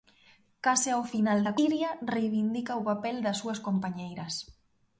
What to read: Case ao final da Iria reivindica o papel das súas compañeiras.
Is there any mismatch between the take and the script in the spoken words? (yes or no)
no